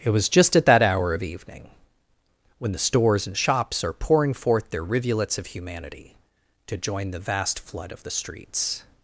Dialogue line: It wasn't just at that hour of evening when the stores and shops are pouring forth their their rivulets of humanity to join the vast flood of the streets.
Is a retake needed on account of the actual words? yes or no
yes